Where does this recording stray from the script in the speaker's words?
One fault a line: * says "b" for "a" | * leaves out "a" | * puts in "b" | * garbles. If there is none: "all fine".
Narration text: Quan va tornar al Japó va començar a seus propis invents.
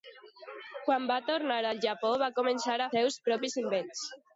all fine